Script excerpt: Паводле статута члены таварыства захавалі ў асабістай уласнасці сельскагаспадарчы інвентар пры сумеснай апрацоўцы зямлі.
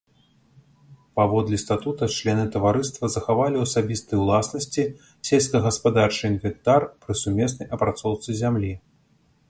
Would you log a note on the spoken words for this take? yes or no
no